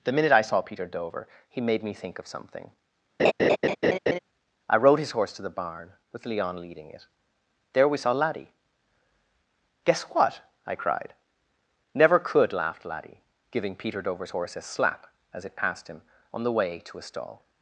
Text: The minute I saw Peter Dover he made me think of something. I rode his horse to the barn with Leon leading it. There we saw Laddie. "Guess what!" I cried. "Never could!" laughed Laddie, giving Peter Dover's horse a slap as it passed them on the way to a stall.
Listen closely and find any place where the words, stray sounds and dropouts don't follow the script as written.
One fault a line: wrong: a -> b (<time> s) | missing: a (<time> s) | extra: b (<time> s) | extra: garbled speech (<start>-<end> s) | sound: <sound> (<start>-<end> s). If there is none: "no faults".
sound: laugh (3.2-4.2 s)
wrong: them -> him (15.9 s)